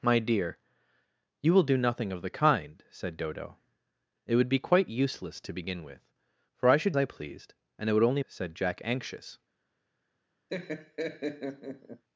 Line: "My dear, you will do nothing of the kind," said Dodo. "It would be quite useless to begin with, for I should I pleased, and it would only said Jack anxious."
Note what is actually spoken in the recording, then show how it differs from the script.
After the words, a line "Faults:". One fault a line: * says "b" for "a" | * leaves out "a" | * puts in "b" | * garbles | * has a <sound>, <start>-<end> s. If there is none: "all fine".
"My dear, you will do nothing of the kind," said Dodo. "It would be quite useless to begin with, for I should I pleased, and it would only said Jack anxious."
Faults:
* has a laugh, 10.5-12.0 s